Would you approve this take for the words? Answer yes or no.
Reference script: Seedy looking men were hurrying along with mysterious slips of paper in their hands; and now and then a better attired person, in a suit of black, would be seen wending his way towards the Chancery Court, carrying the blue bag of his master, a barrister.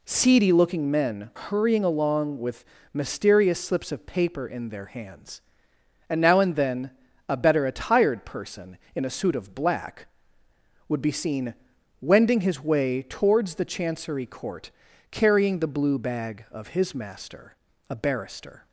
no